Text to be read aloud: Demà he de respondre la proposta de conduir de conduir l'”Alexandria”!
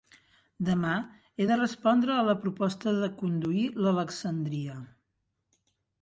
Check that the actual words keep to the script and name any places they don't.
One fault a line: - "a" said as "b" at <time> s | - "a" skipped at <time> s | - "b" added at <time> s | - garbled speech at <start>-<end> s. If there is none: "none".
- "a" added at 2.2 s
- "de conduir" skipped at 3.6 s